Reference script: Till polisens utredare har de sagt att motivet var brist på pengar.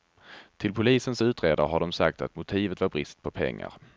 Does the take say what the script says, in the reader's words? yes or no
yes